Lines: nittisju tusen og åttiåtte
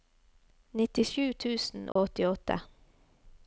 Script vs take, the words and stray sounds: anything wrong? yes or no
yes